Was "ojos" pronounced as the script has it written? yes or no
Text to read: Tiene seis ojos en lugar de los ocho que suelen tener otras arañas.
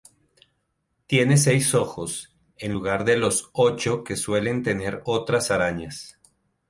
yes